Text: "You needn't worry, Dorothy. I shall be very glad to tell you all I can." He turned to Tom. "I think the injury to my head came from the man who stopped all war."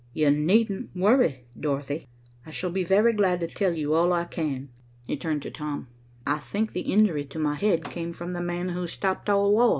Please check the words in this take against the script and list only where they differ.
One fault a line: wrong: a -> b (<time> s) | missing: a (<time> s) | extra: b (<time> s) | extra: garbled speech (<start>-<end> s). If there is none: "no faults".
no faults